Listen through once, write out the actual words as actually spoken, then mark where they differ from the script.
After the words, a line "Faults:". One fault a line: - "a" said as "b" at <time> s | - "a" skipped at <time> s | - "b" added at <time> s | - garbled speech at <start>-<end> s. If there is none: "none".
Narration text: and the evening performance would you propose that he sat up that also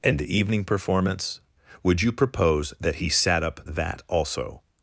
and the evening performance would you propose that he sat up that also
Faults:
none